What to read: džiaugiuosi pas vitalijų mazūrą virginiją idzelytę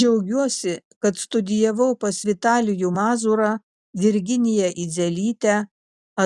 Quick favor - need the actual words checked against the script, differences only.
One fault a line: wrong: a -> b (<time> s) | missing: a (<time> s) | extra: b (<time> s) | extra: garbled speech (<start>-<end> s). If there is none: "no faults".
extra: kad studijavau (1.0 s)